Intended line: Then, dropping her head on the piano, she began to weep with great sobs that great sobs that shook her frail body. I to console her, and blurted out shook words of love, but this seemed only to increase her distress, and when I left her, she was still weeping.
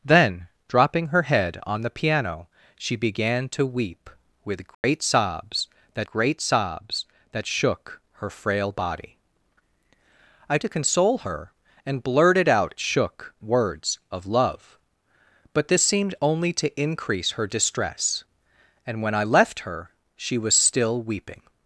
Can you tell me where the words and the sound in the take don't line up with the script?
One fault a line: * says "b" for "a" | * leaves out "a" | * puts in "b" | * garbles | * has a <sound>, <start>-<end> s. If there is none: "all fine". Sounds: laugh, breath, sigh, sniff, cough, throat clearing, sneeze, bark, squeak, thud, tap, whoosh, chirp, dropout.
* has a dropout, 4.7-4.8 s